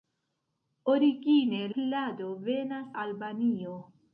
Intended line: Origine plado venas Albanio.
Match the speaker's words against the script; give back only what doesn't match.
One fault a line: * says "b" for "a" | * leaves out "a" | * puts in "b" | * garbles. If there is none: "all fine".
all fine